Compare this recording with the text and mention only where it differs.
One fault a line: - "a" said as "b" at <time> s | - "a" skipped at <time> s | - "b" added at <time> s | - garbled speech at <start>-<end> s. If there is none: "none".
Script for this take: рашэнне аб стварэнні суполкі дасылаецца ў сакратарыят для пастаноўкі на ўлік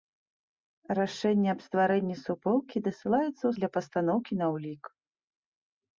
- "сакратарыят" skipped at 3.5 s